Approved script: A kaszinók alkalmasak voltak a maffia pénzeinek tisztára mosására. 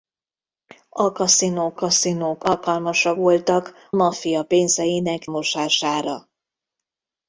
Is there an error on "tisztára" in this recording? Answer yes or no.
yes